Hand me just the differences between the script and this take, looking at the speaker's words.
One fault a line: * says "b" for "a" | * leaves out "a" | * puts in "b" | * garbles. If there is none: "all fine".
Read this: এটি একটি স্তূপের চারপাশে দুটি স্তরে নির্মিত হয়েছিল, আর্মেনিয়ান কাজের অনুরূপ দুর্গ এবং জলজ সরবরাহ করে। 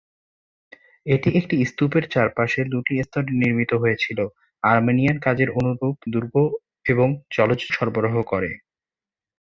all fine